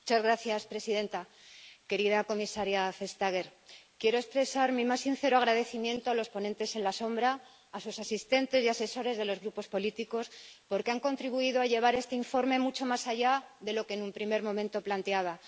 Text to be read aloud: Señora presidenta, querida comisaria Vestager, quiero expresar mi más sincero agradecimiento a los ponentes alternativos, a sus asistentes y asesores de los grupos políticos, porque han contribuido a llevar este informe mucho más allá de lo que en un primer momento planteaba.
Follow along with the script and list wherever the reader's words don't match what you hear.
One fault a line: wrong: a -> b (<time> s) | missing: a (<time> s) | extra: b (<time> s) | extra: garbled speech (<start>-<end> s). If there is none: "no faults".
no faults